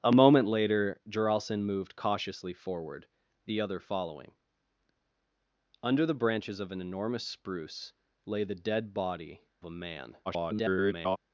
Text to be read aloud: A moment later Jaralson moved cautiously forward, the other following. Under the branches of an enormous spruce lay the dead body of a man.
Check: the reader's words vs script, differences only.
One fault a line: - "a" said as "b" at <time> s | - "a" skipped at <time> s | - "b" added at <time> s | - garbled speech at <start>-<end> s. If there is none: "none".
- "of" skipped at 9.4 s
- garbled speech at 10.2-11.2 s